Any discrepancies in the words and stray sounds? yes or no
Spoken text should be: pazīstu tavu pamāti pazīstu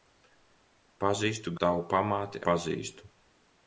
no